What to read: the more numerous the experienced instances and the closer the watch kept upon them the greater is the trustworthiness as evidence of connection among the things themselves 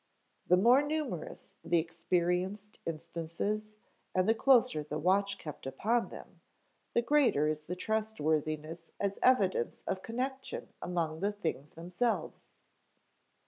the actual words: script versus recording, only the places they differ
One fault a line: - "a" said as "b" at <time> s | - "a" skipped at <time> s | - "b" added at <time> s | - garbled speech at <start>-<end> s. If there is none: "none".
none